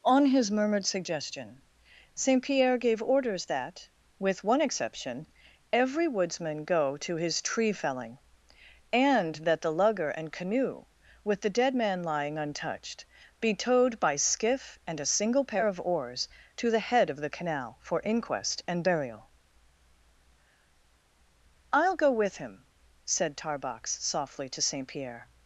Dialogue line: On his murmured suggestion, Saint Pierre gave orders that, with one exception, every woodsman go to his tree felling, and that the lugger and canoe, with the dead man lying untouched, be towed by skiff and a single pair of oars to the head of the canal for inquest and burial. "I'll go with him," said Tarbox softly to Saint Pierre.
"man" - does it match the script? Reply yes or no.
yes